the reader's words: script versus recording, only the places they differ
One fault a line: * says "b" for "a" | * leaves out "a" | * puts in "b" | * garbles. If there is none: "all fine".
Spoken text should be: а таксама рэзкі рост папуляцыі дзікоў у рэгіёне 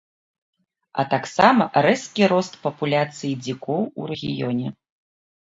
all fine